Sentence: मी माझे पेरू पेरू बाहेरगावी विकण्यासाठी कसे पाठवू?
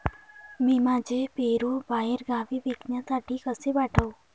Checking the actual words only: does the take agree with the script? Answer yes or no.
no